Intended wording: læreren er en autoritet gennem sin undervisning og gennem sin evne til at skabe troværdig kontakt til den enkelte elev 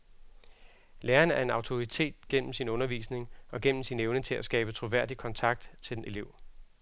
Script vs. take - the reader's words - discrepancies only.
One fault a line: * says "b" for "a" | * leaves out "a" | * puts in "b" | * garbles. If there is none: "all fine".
* leaves out "enkelte"